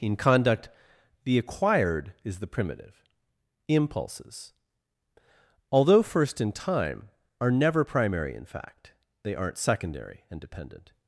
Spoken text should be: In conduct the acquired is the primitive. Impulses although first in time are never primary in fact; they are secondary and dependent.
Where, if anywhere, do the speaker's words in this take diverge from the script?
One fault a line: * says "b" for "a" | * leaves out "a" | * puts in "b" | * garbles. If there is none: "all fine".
* says "aren't" for "are"